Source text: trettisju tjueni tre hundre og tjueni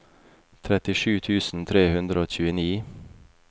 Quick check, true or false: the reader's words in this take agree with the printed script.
false